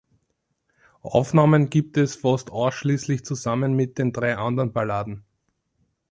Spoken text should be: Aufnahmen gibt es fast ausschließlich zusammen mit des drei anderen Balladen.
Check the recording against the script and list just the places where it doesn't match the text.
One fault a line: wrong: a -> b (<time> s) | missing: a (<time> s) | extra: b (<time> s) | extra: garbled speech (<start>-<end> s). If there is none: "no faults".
wrong: des -> den (4.0 s)